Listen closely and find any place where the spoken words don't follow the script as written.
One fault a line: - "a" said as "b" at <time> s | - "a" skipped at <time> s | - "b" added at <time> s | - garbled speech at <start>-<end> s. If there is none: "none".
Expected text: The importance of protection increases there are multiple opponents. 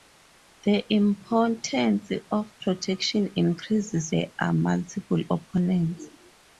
none